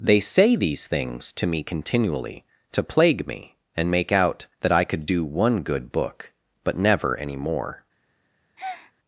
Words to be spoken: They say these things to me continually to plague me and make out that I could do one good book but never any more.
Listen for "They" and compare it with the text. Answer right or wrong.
right